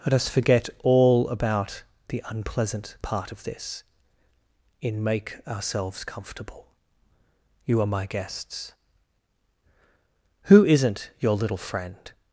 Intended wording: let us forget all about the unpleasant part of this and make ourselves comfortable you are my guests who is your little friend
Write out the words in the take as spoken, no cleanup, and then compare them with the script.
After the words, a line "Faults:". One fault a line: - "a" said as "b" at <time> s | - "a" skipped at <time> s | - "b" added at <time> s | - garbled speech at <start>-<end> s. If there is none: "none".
let us forget all about the unpleasant part of this in make ourselves comfortable you are my guests who isn't your little friend
Faults:
- "and" said as "in" at 4.8 s
- "is" said as "isn't" at 10.6 s